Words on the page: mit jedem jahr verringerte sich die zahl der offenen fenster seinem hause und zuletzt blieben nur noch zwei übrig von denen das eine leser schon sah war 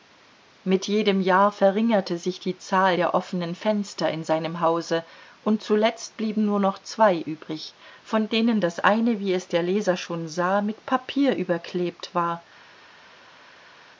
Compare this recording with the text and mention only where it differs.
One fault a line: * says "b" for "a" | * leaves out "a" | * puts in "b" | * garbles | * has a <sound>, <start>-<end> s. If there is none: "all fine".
* puts in "in"
* puts in "wie es der"
* puts in "mit papier überklebt"